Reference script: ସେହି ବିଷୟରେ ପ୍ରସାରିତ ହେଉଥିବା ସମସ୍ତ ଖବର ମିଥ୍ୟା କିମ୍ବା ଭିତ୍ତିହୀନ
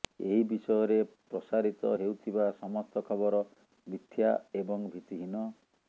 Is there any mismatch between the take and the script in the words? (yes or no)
yes